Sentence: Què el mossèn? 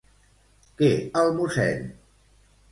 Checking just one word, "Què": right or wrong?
right